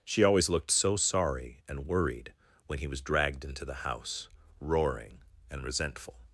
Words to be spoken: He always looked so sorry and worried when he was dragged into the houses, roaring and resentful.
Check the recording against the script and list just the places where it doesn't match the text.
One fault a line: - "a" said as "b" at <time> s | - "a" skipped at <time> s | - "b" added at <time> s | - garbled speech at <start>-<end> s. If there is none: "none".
- "He" said as "She" at 0.1 s
- "houses" said as "house" at 3.9 s